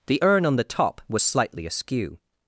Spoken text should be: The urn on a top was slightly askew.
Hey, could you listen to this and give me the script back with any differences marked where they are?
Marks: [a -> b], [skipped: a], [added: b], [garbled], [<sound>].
The urn on [a -> the] top was slightly askew.